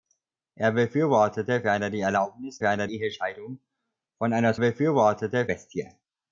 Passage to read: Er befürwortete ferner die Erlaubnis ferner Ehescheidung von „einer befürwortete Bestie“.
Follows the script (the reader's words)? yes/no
yes